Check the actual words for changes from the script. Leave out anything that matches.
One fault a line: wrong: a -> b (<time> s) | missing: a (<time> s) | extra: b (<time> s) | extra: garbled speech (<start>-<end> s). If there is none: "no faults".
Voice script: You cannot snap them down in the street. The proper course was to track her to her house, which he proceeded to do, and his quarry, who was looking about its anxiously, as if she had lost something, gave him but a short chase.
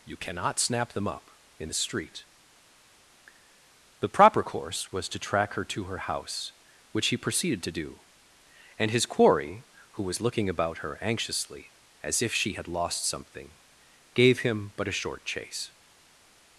wrong: down -> up (1.1 s)
wrong: its -> her (10.8 s)